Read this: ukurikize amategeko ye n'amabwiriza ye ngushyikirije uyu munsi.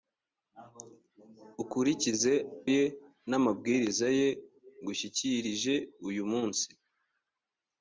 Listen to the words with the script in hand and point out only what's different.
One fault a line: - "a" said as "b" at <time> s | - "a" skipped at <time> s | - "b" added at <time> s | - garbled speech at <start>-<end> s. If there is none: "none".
- "amategeko" skipped at 2.3 s